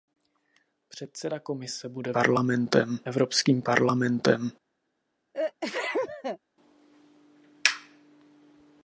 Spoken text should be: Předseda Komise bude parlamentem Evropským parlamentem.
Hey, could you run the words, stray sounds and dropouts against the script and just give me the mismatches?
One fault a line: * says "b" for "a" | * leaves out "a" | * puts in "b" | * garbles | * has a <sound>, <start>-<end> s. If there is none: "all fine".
* has a sneeze, 5.3-6.4 s